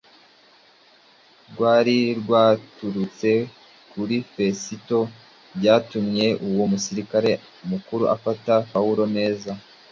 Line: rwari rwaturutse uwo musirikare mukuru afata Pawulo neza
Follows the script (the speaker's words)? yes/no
no